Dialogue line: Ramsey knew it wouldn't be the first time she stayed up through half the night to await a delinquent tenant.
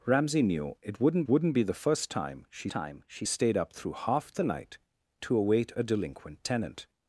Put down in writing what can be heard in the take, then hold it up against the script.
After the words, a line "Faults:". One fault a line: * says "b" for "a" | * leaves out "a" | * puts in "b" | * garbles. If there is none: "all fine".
Ramsey knew it wouldn't wouldn't be the first time she time she stayed up through half the night to await a delinquent tenant.
Faults:
* puts in "wouldn't"
* puts in "time she"